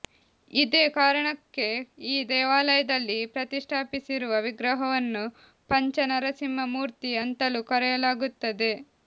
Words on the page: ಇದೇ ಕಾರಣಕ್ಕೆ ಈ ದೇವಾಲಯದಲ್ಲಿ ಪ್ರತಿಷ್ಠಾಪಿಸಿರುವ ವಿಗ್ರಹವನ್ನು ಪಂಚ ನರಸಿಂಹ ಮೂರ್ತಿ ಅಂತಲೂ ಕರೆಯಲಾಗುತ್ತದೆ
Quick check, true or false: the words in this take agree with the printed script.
true